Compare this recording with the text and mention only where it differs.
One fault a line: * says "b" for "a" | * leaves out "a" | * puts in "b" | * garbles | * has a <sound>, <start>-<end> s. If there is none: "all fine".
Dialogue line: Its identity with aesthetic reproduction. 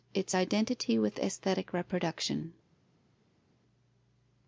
all fine